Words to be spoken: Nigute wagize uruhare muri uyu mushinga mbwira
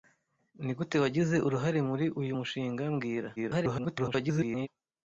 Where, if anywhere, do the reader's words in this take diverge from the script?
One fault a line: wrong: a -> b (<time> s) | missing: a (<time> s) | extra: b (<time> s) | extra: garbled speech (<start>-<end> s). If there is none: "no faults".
extra: garbled speech (3.4-4.7 s)